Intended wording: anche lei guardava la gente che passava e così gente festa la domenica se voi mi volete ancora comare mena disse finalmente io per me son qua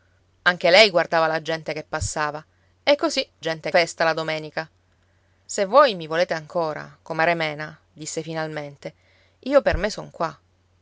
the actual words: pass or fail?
pass